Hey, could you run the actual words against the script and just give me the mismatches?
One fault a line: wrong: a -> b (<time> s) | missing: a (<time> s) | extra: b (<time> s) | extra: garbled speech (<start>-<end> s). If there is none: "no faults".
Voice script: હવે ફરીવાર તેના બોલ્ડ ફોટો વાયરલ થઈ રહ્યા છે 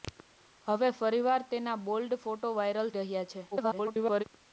missing: થઈ (2.9 s)
extra: garbled speech (3.5-4.2 s)